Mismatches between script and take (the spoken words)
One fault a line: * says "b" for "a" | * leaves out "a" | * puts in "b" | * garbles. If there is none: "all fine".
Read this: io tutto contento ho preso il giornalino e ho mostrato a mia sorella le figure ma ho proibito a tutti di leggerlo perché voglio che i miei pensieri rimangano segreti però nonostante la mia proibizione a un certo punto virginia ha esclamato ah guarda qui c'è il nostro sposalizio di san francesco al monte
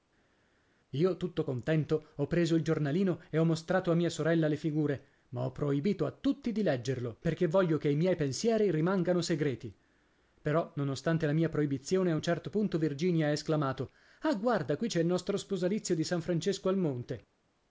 all fine